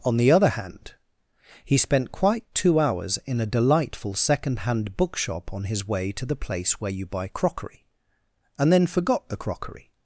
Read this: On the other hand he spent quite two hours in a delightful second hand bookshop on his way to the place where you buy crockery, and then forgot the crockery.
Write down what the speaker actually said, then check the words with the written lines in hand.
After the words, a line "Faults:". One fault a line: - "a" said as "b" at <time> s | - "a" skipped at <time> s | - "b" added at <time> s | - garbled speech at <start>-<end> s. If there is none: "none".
On the other hand he spent quite two hours in a delightful second hand bookshop on his way to the place where you buy crockery, and then forgot the crockery.
Faults:
none